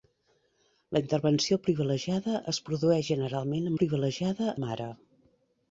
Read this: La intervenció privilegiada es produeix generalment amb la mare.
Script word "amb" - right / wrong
wrong